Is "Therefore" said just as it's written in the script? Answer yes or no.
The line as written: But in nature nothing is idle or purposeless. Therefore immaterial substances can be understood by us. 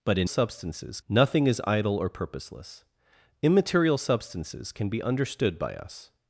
no